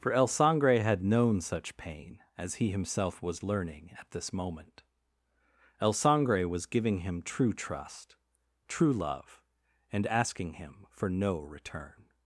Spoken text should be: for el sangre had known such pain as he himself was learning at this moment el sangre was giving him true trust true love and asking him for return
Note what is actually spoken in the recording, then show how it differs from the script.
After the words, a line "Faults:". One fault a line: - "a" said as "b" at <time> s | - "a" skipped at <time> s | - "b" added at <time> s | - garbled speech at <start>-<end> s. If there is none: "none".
for el sangre had known such pain as he himself was learning at this moment el sangre was giving him true trust true love and asking him for no return
Faults:
- "no" added at 11.1 s